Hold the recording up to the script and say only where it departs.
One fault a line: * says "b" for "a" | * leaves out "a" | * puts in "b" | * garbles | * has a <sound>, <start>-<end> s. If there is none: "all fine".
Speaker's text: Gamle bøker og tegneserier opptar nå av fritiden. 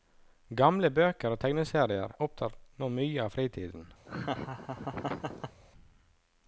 * puts in "mye"
* has a laugh, 4.1-5.6 s